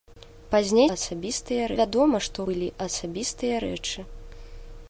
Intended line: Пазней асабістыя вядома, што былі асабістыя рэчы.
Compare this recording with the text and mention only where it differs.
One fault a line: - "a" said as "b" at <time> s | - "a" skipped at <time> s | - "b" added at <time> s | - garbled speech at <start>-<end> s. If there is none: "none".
none